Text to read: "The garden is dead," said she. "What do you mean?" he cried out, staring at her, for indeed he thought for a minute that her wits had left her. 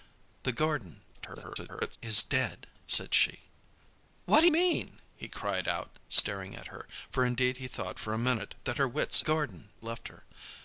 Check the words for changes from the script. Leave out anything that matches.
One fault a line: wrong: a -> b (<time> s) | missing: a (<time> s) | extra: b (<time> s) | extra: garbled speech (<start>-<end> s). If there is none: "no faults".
extra: garbled speech (1.1-2.0 s)
missing: you (4.5 s)
wrong: had -> garden (9.2 s)